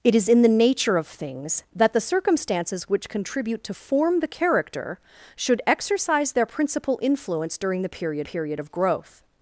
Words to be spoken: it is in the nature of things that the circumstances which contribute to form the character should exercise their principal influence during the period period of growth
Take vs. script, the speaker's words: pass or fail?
pass